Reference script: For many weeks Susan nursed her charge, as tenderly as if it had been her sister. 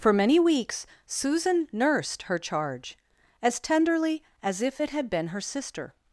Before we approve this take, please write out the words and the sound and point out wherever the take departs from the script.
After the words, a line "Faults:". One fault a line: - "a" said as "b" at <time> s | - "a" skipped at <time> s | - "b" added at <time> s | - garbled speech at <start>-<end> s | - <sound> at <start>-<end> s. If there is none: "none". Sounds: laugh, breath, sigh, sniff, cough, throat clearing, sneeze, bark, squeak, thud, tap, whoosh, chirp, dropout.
For many weeks Susan nursed her charge, as tenderly as if it had been her sister.
Faults:
none